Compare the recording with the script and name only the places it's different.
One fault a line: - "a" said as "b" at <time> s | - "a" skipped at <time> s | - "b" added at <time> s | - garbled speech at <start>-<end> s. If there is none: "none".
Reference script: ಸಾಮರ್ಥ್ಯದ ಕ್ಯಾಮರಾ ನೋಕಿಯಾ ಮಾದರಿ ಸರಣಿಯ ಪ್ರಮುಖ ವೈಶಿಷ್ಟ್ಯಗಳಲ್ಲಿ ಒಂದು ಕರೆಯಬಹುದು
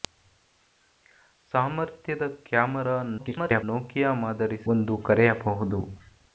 - garbled speech at 3.2-3.6 s
- "ಸರಣಿಯ ಪ್ರಮುಖ ವೈಶಿಷ್ಟ್ಯಗಳಲ್ಲಿ" skipped at 4.6 s